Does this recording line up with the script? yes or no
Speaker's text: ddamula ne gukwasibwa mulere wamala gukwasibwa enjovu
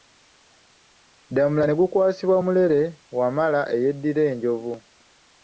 no